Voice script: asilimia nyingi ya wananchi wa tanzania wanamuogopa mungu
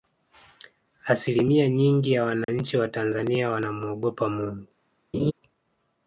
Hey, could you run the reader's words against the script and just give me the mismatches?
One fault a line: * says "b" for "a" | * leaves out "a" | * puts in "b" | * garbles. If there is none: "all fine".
all fine